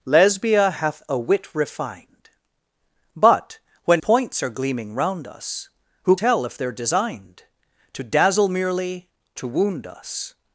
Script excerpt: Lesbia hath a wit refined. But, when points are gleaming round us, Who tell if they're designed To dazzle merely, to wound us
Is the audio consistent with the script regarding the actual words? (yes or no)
yes